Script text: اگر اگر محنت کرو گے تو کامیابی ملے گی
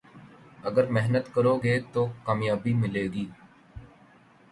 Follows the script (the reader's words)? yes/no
no